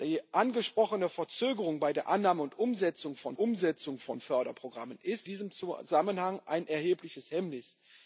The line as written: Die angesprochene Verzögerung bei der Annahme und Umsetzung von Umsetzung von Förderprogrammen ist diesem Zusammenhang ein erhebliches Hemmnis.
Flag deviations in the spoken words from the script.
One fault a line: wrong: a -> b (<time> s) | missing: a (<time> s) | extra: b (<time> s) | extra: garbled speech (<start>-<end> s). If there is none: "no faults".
no faults